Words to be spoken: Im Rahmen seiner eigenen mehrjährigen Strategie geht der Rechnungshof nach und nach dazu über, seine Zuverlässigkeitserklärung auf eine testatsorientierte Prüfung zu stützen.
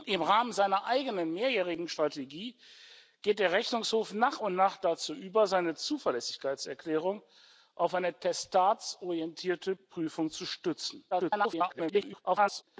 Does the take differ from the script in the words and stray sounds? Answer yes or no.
yes